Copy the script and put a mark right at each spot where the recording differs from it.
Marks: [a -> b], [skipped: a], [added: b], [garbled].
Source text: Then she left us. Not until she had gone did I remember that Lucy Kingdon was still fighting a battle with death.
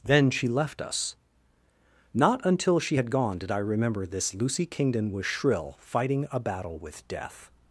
Then she left us. Not until she had gone did I remember [that -> this] Lucy Kingdon was [still -> shrill] fighting a battle with death.